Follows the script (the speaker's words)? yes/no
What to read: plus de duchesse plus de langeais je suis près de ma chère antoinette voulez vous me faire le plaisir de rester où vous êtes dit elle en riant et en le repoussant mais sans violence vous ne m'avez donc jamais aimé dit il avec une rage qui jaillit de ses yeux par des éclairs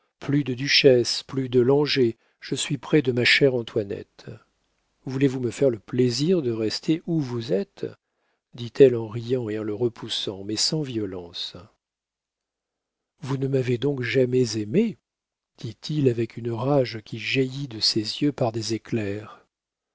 yes